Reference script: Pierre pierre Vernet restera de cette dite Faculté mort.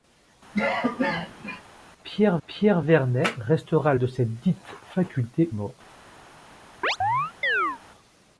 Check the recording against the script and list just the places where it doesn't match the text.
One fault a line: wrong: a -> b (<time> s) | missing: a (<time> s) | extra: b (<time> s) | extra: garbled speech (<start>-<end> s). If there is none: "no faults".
no faults